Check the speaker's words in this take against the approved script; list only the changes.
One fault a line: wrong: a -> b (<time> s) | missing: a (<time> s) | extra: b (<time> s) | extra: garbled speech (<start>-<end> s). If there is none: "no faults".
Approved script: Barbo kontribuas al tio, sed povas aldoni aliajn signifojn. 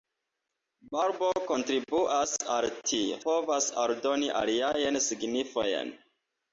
missing: sed (3.2 s)